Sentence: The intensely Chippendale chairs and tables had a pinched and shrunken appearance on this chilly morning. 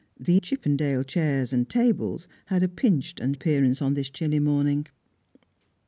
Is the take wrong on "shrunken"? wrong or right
wrong